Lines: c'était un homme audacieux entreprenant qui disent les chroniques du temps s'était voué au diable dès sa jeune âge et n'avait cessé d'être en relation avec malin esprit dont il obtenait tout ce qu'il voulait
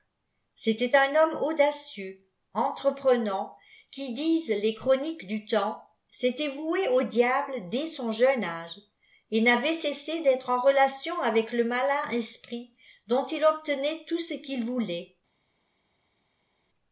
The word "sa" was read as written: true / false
false